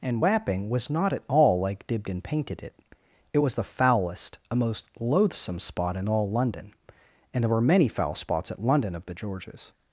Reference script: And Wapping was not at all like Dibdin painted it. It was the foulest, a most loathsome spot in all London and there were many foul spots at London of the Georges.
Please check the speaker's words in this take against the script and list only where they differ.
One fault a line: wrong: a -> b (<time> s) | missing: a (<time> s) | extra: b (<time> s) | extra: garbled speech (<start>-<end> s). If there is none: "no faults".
no faults